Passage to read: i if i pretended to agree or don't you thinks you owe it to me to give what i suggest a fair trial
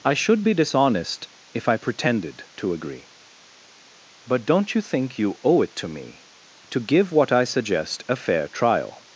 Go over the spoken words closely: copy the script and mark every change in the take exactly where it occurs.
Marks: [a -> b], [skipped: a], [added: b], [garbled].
i [added: should be dishonest] if i pretended to agree [or -> but] don't you [thinks -> think] you owe it to me to give what i suggest a fair trial